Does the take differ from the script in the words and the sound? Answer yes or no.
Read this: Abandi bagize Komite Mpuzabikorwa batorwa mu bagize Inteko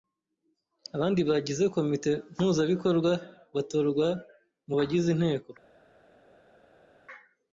no